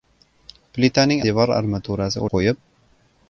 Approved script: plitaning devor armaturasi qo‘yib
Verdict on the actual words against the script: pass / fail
pass